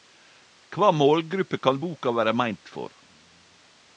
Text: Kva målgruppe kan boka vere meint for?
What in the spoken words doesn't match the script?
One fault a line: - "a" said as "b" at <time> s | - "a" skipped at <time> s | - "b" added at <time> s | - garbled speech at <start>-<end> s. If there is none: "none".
none